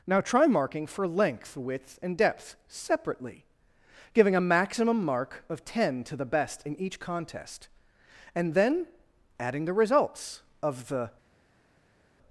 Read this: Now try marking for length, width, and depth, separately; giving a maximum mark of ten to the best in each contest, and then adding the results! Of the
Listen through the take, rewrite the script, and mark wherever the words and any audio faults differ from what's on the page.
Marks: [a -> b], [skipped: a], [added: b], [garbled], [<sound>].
Now try marking for length, width, and depth, separately; giving a maximum mark of ten to the best in each contest, and then adding the results! Of the